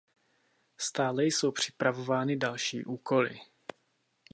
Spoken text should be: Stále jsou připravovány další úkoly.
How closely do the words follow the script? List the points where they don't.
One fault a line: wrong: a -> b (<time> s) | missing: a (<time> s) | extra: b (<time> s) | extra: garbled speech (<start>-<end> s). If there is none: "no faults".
no faults